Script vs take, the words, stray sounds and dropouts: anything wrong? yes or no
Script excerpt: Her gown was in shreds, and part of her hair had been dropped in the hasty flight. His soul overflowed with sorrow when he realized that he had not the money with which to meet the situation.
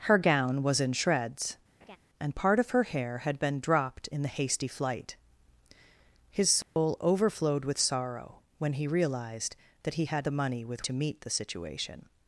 yes